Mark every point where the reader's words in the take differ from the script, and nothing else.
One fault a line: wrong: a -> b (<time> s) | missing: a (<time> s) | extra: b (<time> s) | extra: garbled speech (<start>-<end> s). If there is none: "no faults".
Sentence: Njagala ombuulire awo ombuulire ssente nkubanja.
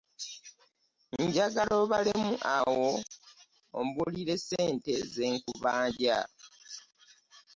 wrong: ombuulire -> obalemu (1.8 s)
extra: ze (5.1 s)